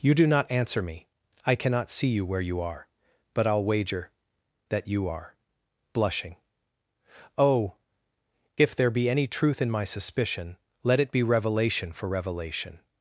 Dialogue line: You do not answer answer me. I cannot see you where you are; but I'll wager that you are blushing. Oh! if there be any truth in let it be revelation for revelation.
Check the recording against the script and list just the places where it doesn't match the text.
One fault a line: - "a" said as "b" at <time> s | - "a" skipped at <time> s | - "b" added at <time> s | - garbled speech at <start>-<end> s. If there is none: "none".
- "answer" skipped at 0.8 s
- "my suspicion" added at 9.7 s